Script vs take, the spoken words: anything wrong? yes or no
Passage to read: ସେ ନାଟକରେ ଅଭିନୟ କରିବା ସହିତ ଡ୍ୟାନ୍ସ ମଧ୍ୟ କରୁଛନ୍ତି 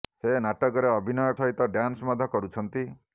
yes